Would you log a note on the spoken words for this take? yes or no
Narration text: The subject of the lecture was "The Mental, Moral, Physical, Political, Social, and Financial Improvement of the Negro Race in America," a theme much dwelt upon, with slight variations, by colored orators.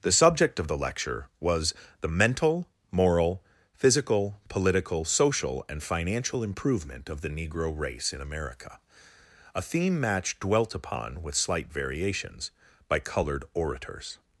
yes